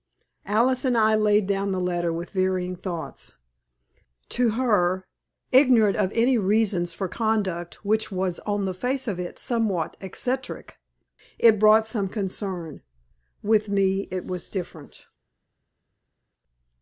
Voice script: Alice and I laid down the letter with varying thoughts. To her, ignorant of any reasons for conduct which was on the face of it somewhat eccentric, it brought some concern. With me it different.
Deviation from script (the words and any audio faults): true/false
true